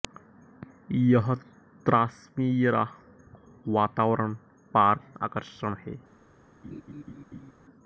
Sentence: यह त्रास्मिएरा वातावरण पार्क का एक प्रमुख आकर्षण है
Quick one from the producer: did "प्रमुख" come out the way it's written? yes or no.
no